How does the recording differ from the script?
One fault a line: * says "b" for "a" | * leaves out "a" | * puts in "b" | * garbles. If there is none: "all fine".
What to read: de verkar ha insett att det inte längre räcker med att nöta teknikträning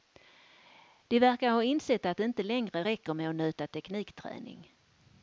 all fine